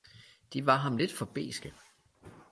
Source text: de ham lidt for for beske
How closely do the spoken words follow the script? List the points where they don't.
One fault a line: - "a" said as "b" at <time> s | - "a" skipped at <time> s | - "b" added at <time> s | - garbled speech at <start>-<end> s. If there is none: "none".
- "var" added at 0.7 s
- "for" skipped at 1.2 s